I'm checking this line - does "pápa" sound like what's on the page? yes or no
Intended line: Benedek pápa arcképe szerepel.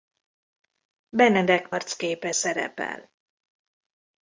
no